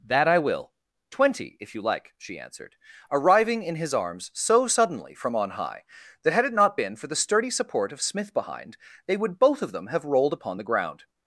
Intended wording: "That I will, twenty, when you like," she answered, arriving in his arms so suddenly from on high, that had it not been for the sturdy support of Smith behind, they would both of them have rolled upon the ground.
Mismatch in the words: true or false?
true